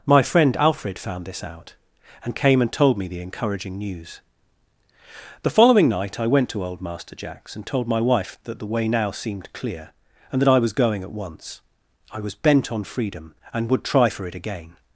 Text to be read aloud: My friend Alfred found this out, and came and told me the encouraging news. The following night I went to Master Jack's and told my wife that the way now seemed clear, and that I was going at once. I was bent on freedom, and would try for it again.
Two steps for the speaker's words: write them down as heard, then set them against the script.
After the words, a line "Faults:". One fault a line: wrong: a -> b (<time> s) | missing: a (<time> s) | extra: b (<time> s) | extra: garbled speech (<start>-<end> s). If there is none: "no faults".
My friend Alfred found this out, and came and told me the encouraging news. The following night I went to old Master Jack's and told my wife that the way now seemed clear, and that I was going at once. I was bent on freedom, and would try for it again.
Faults:
extra: old (6.6 s)